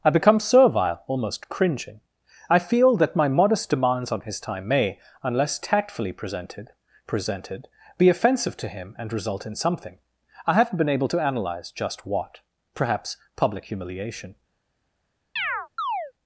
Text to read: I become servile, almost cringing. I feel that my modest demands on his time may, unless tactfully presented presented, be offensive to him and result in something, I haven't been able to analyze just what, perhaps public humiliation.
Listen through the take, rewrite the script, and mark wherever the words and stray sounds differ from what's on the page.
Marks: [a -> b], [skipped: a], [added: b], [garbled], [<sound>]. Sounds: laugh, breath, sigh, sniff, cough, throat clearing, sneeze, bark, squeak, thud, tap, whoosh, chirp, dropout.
I become servile, almost cringing. I feel that my modest demands on his time may, unless tactfully presented presented, be offensive to him and result in something, I haven't been able to analyze just what, perhaps public humiliation. [chirp]